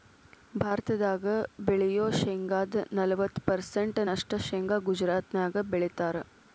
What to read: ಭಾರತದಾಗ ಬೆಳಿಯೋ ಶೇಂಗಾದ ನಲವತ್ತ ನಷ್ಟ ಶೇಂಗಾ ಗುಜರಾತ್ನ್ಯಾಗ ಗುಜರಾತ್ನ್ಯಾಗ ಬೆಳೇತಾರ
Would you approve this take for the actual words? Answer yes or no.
no